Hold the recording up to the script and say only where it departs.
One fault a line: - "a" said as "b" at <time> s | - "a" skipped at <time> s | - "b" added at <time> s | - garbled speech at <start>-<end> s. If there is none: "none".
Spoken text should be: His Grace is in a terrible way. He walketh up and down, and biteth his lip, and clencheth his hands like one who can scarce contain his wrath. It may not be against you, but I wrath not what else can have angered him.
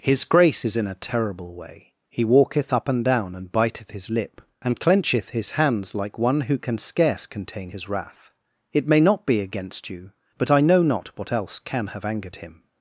- "wrath" said as "know" at 10.6 s